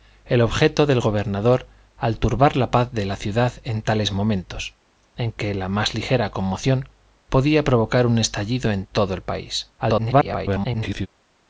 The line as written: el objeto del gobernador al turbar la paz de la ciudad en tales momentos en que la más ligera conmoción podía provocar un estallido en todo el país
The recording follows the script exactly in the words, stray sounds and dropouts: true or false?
false